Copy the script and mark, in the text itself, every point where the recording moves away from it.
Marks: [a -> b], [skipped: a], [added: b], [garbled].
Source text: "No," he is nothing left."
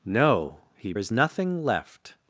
"No," he is nothing left."